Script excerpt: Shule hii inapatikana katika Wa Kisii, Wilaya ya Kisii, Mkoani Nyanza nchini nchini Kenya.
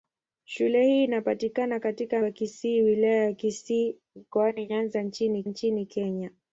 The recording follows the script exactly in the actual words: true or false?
true